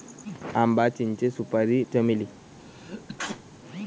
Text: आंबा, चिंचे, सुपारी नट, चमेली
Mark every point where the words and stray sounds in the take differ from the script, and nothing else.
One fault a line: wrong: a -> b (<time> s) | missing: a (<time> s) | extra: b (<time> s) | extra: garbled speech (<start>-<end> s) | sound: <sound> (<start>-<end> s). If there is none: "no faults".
missing: नट (1.8 s)
sound: sneeze (2.6-3.4 s)